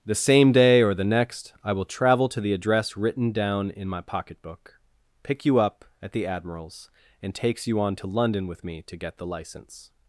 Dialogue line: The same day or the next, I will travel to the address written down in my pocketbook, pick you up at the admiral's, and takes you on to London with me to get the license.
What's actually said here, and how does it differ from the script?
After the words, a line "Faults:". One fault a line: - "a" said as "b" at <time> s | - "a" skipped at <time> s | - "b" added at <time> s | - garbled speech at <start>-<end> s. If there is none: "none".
The same day or the next, I will travel to the address written down in my pocketbook, pick you up at the admiral's, and takes you on to London with me to get the license.
Faults:
none